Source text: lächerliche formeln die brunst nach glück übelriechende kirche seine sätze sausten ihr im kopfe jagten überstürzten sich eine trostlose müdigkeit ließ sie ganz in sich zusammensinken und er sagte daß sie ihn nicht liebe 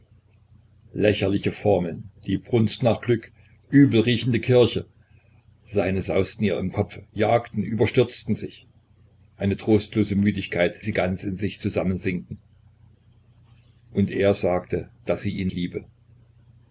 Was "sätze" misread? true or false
true